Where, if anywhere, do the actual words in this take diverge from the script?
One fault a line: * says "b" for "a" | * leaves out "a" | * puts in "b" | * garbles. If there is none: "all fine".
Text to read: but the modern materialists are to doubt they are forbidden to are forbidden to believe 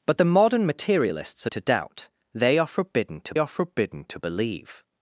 all fine